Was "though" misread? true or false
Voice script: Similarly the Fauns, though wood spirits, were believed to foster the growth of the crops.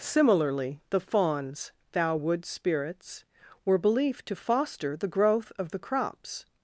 true